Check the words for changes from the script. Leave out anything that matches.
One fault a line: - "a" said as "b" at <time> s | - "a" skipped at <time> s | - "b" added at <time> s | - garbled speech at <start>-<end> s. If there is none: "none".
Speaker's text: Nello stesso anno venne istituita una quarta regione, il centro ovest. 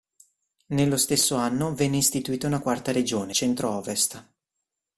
- "il" skipped at 3.4 s